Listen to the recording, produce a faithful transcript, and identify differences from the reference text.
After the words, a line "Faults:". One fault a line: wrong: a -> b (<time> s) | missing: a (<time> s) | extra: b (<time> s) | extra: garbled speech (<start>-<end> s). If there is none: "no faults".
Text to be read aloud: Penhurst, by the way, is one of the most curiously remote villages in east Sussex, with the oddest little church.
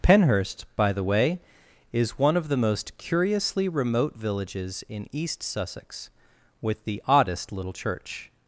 Penhurst, by the way, is one of the most curiously remote villages in east Sussex, with the oddest little church.
Faults:
no faults